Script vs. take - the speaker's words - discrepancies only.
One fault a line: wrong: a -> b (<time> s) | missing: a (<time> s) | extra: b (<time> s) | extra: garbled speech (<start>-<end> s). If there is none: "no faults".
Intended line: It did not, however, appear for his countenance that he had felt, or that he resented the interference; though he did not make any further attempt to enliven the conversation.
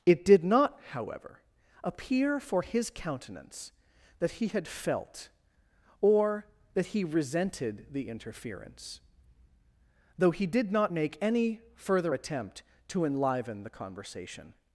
no faults